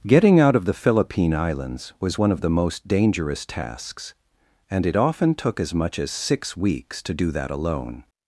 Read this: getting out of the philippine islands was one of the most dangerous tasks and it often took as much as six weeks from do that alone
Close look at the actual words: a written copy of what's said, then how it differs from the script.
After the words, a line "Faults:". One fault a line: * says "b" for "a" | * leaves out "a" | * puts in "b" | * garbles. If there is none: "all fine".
getting out of the philippine islands was one of the most dangerous tasks and it often took as much as six weeks to do that alone
Faults:
* says "to" for "from"